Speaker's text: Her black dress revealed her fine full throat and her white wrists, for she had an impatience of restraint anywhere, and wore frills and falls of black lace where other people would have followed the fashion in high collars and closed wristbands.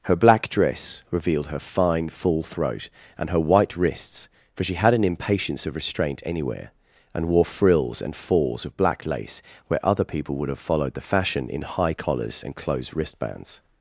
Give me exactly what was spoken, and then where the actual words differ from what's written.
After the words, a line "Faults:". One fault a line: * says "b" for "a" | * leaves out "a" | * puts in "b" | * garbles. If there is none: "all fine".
Her black dress revealed her fine full throat and her white wrists, for she had an impatience of restraint anywhere, and wore frills and falls of black lace where other people would have followed the fashion in high collars and closed wristbands.
Faults:
all fine